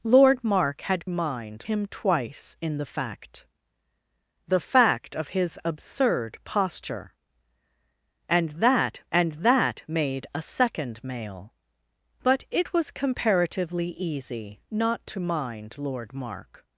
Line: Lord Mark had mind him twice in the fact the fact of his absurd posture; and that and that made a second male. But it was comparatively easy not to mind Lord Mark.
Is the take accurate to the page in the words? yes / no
yes